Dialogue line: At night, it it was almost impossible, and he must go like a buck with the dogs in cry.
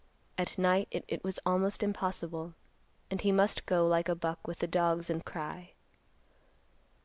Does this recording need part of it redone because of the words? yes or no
no